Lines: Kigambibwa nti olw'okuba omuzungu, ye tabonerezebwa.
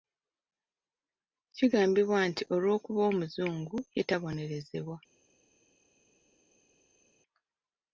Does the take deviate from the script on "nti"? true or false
false